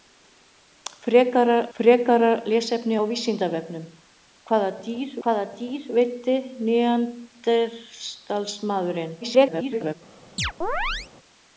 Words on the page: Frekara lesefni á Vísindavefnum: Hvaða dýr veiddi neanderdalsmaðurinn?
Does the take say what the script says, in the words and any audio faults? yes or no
no